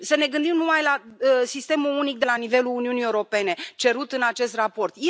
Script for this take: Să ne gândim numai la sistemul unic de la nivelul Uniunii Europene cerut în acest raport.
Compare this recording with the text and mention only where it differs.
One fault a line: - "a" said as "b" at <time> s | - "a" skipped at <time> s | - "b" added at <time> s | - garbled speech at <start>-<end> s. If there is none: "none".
none